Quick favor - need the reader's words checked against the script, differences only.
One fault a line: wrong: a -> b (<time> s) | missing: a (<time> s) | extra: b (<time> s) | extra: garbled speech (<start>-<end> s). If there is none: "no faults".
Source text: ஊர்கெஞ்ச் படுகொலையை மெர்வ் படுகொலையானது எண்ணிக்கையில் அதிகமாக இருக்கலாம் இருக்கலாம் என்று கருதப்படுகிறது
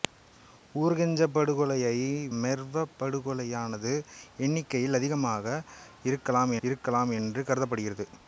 no faults